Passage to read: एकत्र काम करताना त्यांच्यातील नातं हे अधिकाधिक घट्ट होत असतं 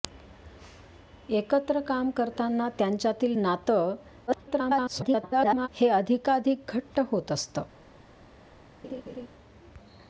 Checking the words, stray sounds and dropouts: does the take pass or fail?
fail